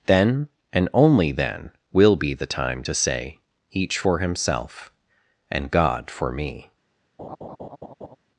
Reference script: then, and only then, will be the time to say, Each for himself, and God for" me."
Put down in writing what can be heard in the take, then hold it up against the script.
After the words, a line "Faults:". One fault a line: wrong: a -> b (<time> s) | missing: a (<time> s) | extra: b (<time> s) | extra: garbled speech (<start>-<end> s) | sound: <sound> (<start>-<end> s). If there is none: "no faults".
then, and only then, will be the time to say, Each for himself, and God for" me."
Faults:
sound: laugh (7.2-8.2 s)